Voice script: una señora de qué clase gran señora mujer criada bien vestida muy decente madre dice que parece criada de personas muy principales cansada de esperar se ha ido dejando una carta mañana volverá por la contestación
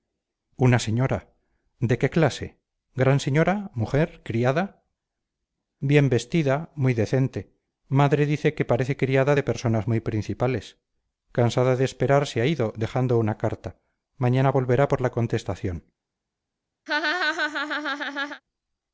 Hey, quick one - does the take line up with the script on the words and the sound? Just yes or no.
no